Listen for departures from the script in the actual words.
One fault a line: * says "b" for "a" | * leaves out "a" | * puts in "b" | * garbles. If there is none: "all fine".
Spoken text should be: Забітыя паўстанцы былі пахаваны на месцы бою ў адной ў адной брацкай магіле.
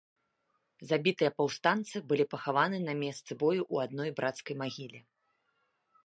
* leaves out "ў адной"